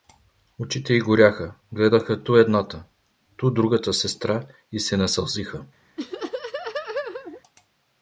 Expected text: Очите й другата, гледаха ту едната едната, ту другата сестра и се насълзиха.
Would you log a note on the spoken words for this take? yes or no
yes